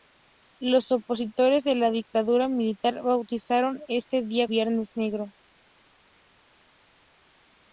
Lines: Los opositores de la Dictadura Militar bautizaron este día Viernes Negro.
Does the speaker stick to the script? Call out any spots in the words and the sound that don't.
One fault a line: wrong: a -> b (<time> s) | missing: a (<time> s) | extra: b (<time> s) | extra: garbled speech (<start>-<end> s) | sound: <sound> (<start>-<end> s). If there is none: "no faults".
no faults